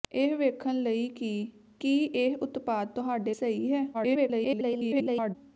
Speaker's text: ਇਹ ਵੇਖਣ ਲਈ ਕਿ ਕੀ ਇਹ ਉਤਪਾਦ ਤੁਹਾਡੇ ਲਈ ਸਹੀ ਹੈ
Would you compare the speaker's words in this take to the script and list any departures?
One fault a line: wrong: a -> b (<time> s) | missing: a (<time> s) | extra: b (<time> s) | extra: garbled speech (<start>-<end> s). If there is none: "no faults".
missing: ਲਈ (3.3 s)
extra: garbled speech (3.9-5.4 s)